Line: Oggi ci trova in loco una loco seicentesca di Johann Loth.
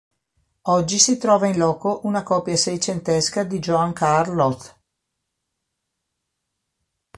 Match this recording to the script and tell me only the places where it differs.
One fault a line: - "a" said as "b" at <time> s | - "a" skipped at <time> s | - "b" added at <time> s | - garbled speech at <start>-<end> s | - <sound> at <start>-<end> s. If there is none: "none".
- "ci" said as "si" at 1.0 s
- "loco" said as "copia" at 2.2 s
- "Carl" added at 3.9 s